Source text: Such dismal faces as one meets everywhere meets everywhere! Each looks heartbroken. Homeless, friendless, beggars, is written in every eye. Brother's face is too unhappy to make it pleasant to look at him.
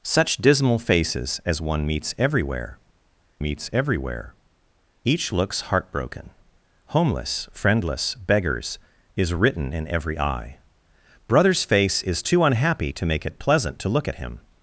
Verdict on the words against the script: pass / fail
pass